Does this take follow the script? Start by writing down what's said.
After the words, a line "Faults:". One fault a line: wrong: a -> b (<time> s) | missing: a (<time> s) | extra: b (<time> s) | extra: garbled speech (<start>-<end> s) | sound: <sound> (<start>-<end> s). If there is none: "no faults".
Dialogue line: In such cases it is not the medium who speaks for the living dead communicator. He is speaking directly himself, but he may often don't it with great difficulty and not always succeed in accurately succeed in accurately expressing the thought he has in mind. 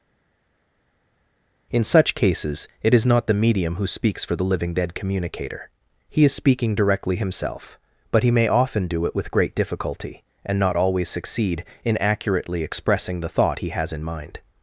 In such cases it is not the medium who speaks for the living dead communicator. He is speaking directly himself, but he may often do it with great difficulty and not always succeed in accurately expressing the thought he has in mind.
Faults:
wrong: don't -> do (8.9 s)
missing: succeed in accurately (12.6 s)